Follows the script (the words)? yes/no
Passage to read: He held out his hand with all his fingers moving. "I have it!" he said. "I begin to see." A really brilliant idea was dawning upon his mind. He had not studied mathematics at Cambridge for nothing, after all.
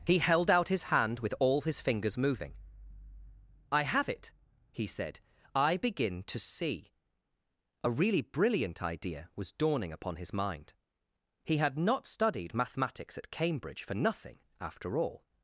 yes